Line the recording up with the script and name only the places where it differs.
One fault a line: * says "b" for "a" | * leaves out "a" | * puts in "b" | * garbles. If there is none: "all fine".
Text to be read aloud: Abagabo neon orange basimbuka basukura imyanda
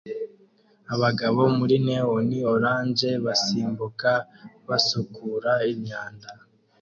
* puts in "muri"